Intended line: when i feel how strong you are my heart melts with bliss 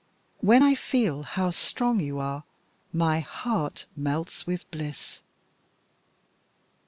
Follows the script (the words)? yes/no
yes